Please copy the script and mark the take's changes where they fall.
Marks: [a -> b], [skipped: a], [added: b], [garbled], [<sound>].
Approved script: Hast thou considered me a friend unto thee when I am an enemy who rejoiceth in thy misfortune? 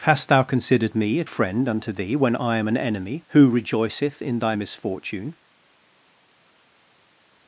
Hast thou considered me a friend unto thee when I am an enemy who rejoiceth in thy misfortune?